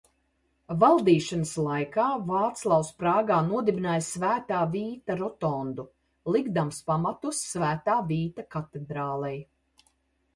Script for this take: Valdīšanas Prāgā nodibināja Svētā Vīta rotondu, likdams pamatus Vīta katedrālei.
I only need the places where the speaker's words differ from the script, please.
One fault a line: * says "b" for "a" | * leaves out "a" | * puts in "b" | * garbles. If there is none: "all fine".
* puts in "laikā Vāclavs"
* puts in "Svētā"